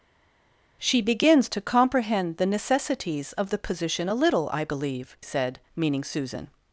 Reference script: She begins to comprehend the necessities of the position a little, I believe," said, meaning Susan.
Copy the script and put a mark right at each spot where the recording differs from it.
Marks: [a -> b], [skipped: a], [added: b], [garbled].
She begins to comprehend the necessities of the position a little, I believe," said, meaning Susan.